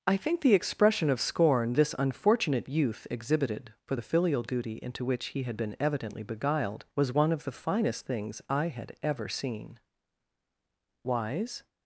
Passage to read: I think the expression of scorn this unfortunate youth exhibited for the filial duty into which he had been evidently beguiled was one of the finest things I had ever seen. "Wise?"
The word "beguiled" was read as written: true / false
true